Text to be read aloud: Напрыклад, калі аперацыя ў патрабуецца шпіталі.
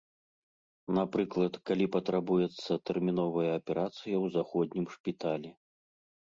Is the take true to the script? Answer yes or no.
no